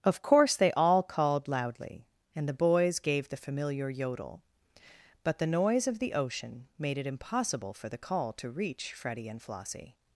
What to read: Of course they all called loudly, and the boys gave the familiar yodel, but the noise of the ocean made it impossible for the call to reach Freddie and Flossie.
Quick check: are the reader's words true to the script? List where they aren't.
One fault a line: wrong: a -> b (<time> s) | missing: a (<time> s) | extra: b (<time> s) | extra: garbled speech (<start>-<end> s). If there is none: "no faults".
no faults